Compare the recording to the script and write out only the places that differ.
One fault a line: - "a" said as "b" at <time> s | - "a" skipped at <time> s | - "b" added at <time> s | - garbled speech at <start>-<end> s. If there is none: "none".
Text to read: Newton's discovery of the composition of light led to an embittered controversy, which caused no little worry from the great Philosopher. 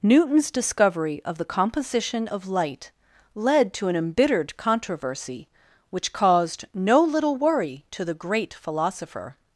- "from" said as "to" at 7.9 s